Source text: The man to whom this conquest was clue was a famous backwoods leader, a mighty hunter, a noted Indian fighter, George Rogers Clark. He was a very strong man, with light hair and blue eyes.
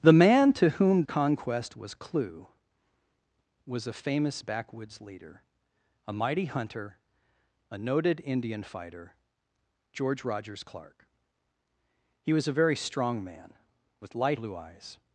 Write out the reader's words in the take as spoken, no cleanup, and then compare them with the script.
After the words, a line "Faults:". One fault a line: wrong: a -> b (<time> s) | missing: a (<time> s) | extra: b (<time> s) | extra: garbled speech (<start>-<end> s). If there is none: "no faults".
The man to whom conquest was clue was a famous backwoods leader, a mighty hunter, a noted Indian fighter, George Rogers Clark. He was a very strong man, with light blue eyes.
Faults:
missing: this (1.0 s)
missing: hair and (14.4 s)